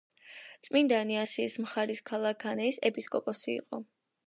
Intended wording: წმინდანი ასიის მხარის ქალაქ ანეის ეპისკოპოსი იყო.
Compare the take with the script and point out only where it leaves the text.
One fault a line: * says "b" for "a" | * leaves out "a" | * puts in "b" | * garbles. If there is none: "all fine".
all fine